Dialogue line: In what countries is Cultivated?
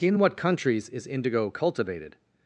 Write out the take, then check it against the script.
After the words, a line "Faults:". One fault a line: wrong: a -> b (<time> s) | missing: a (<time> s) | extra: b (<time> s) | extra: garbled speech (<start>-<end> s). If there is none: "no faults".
In what countries is Indigo cultivated?
Faults:
extra: Indigo (1.1 s)